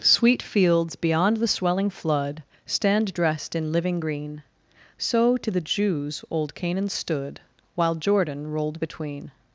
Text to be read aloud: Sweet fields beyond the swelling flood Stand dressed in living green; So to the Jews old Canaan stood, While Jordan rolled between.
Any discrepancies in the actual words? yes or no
no